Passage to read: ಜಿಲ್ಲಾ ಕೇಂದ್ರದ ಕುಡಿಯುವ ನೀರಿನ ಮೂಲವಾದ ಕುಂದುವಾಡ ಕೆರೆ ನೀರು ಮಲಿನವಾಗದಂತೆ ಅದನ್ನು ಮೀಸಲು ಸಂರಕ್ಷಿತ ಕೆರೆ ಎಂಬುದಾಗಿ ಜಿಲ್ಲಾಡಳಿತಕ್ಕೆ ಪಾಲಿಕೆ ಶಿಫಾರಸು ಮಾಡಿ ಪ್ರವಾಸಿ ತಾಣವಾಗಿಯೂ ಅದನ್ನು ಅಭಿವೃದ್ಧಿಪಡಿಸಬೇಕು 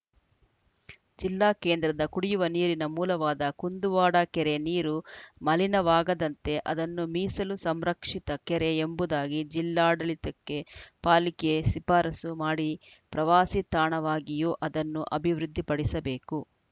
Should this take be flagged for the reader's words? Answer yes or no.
no